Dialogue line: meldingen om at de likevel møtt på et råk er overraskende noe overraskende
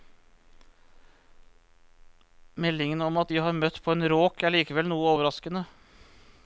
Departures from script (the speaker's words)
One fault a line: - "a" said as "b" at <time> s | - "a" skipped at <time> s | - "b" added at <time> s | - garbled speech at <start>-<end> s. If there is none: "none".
- "likevel" said as "har" at 3.4 s
- "et" said as "en" at 3.9 s
- "overraskende" said as "likevel" at 4.5 s